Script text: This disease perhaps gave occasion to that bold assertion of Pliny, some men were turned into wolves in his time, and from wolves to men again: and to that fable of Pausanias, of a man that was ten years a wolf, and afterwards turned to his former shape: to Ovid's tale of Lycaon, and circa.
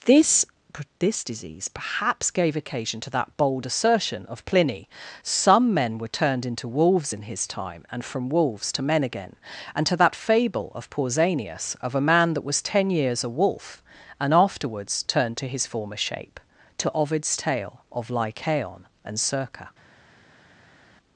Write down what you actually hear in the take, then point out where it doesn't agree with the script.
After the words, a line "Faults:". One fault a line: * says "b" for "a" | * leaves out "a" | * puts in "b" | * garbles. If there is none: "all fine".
This this disease perhaps gave occasion to that bold assertion of Pliny, some men were turned into wolves in his time, and from wolves to men again: and to that fable of Pausanias, of a man that was ten years a wolf, and afterwards turned to his former shape: to Ovid's tale of Lycaon, and circa.
Faults:
* puts in "this"